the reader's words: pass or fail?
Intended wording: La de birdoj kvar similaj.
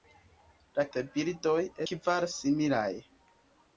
pass